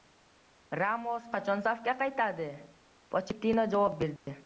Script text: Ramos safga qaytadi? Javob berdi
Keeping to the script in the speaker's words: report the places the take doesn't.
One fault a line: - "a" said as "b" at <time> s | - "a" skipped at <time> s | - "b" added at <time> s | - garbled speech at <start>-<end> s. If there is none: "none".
- "qachon" added at 1.3 s
- "Pochettino" added at 3.2 s